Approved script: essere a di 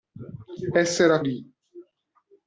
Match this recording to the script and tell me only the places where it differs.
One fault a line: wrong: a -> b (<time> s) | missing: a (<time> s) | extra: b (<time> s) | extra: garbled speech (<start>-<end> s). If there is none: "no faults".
no faults